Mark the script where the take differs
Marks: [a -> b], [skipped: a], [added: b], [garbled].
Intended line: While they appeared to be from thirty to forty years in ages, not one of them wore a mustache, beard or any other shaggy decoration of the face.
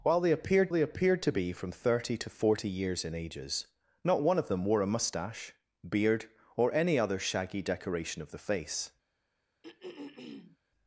While they appeared [added: they appeared] to be from thirty to forty years in ages, not one of them wore a mustache, beard or any other shaggy decoration of the face.